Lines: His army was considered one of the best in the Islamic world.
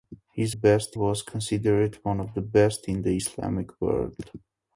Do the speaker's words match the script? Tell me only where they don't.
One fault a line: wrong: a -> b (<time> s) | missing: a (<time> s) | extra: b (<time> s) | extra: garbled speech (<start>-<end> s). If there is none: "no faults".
wrong: army -> best (0.5 s)